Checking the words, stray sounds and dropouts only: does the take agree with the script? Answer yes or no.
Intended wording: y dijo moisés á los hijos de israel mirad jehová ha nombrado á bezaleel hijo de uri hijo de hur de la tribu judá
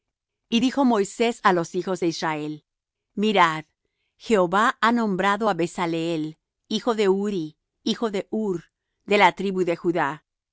no